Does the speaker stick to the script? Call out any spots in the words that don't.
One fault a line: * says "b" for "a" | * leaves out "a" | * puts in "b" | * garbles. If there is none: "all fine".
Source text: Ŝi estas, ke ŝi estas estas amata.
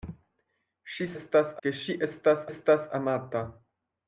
all fine